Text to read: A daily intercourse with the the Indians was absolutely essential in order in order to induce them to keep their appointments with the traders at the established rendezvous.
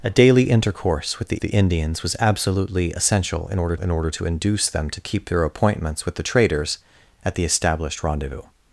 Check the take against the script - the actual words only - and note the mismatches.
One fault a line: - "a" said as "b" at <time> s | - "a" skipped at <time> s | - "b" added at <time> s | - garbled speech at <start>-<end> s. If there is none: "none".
none